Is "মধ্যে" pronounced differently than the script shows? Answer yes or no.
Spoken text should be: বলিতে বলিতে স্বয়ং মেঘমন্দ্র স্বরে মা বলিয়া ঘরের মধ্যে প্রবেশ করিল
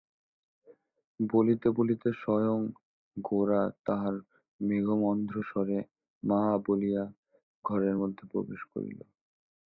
no